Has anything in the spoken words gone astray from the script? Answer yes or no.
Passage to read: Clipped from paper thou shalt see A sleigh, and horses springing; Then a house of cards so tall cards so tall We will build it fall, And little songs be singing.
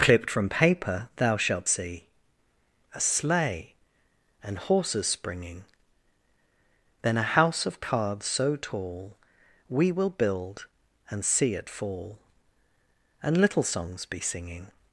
yes